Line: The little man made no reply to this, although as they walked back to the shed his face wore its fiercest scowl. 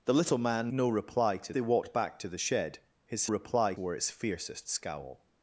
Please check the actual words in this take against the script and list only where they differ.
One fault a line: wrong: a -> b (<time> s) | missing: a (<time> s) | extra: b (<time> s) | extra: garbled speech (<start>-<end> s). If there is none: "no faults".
missing: made (0.7 s)
missing: this although as (1.5 s)
wrong: face -> reply (3.3 s)